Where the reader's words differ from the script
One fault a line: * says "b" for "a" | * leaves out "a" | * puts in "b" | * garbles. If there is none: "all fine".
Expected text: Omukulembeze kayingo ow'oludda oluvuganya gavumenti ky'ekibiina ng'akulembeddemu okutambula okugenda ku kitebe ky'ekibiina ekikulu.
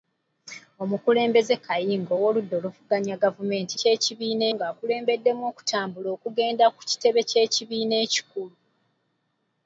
all fine